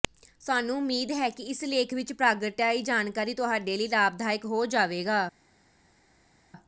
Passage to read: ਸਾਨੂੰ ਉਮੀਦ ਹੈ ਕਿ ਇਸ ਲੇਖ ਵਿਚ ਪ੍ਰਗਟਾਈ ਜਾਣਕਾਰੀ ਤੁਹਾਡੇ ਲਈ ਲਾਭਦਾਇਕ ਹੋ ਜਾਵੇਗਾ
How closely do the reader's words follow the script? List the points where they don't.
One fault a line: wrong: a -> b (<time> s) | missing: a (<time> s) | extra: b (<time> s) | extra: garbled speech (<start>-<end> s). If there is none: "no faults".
no faults